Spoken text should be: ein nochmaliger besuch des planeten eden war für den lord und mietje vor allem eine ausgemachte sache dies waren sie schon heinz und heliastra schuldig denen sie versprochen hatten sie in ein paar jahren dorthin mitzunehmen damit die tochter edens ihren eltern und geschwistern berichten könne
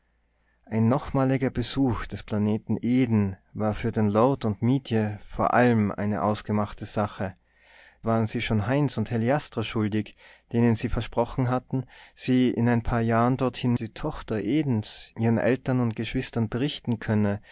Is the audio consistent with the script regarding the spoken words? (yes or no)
no